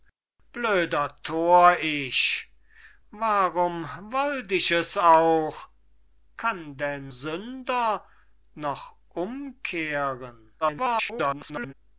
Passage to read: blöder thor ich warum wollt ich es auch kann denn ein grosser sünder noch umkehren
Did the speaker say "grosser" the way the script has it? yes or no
no